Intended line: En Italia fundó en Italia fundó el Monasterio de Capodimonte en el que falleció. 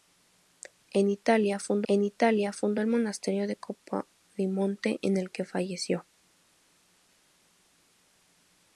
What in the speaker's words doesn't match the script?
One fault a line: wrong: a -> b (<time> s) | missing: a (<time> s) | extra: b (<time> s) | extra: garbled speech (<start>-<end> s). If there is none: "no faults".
no faults